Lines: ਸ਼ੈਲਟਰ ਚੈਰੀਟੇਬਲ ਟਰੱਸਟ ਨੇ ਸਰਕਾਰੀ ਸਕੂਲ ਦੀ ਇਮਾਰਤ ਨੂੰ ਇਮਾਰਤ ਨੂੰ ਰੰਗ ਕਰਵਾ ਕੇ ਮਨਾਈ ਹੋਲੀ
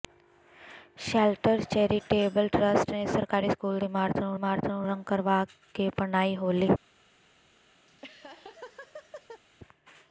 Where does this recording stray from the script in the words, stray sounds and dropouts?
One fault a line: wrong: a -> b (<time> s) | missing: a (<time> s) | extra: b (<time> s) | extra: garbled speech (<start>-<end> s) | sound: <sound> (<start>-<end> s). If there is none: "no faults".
sound: laugh (7.9-9.4 s)